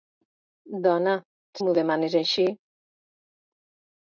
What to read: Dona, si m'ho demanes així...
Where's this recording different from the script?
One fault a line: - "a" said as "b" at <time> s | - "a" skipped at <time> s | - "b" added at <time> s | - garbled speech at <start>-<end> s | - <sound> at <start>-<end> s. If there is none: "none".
- "si" skipped at 1.1 s